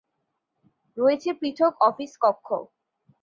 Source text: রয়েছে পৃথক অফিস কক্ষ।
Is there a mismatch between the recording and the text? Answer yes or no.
no